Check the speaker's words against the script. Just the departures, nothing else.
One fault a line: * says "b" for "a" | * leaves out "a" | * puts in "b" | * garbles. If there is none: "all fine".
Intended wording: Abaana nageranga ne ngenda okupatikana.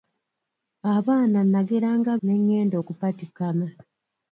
all fine